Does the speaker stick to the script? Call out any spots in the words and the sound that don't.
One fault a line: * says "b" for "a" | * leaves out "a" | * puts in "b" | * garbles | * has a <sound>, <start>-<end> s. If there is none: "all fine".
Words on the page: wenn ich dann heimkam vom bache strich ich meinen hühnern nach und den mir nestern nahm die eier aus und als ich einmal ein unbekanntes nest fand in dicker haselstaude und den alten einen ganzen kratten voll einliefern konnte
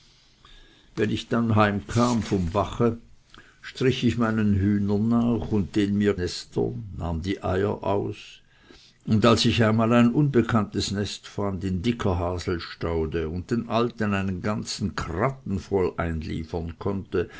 all fine